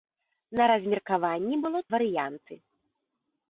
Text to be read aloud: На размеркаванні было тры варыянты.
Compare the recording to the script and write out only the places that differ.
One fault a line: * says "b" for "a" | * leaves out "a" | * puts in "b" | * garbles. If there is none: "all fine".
* leaves out "тры"